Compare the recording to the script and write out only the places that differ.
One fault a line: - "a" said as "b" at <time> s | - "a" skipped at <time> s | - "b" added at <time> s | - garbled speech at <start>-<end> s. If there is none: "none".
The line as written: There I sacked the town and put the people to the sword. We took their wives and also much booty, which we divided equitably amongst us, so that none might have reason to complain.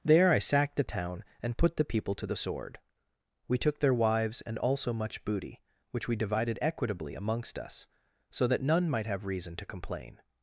none